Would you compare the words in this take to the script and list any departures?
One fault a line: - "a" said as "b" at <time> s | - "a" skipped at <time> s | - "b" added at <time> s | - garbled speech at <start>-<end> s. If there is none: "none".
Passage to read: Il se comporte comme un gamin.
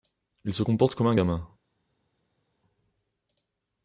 none